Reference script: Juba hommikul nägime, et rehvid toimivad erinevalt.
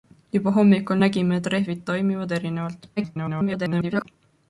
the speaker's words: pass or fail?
fail